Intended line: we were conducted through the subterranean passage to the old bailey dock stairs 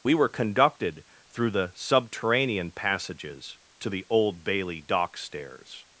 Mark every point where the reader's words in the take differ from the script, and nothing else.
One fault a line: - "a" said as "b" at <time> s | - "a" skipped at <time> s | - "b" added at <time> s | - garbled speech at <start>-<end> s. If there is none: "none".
- "passage" said as "passages" at 2.7 s